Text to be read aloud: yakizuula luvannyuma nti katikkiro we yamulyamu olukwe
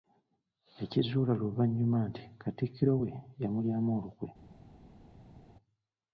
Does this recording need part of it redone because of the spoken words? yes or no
no